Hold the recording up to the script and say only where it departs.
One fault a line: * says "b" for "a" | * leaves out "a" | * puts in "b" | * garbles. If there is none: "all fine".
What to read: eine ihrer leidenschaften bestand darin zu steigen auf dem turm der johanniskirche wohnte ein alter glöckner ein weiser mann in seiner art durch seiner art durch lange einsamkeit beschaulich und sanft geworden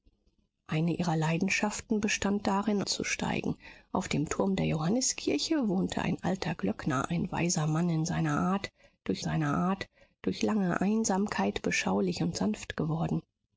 all fine